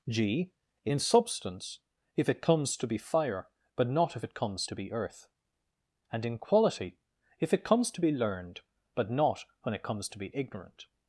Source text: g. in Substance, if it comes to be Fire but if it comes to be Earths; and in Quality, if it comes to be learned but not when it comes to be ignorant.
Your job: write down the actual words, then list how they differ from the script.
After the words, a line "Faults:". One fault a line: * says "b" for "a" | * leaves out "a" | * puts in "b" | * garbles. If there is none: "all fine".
g. in Substance, if it comes to be Fire but not if it comes to be Earth; and in Quality, if it comes to be learned but not when it comes to be ignorant.
Faults:
* puts in "not"
* says "Earth" for "Earths"